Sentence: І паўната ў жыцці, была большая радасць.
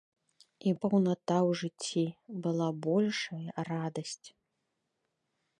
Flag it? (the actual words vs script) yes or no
no